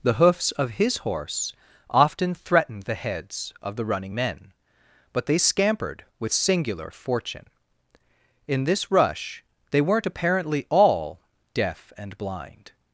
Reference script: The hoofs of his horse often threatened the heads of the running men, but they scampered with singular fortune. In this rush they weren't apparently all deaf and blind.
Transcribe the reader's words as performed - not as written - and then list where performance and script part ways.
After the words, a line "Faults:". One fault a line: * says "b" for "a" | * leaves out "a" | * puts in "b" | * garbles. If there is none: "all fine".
The hoofs of his horse often threatened the heads of the running men, but they scampered with singular fortune. In this rush they weren't apparently all deaf and blind.
Faults:
all fine